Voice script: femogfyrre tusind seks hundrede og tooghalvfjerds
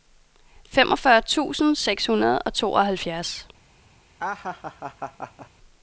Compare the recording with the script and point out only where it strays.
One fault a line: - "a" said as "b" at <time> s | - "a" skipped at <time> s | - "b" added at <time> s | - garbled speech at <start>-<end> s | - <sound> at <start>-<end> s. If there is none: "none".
- laugh at 4.2-5.5 s